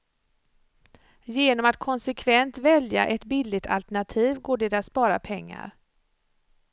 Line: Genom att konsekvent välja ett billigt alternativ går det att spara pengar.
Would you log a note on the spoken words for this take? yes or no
no